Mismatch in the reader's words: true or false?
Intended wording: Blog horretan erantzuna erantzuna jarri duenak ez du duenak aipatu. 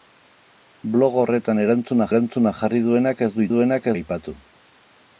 false